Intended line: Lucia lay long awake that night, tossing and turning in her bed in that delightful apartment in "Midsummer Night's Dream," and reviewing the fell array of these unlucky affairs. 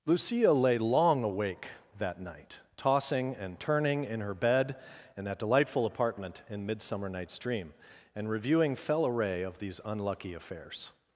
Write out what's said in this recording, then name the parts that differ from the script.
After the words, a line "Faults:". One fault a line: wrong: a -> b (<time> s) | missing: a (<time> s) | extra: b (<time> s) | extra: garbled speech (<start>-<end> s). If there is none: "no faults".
Lucia lay long awake that night, tossing and turning in her bed in that delightful apartment in "Midsummer Night's Dream," and reviewing fell array of these unlucky affairs.
Faults:
missing: the (8.8 s)